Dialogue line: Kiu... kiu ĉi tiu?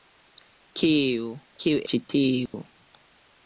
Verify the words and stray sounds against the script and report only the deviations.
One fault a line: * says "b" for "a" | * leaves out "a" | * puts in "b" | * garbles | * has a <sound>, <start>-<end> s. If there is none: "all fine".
* has a dropout, 2.5-2.5 s